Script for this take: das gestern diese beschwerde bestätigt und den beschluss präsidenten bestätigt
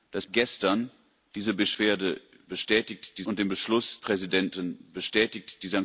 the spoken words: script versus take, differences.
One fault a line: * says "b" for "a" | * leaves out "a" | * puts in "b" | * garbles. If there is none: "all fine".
all fine